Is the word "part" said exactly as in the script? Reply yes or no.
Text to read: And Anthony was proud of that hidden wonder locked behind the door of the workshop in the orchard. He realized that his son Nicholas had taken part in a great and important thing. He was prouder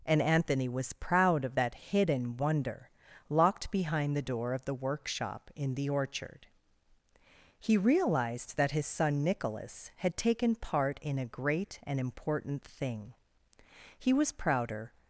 yes